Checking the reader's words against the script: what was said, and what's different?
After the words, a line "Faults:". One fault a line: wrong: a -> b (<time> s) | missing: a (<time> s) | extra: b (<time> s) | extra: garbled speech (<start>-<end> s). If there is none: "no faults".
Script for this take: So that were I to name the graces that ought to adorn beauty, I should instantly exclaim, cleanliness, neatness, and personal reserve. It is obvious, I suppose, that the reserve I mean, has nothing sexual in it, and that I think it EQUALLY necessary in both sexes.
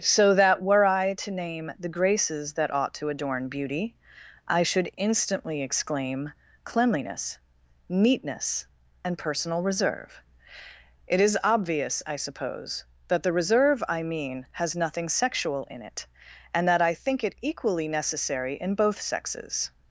So that were I to name the graces that ought to adorn beauty, I should instantly exclaim, cleanliness, neatness, and personal reserve. It is obvious, I suppose, that the reserve I mean, has nothing sexual in it, and that I think it EQUALLY necessary in both sexes.
Faults:
no faults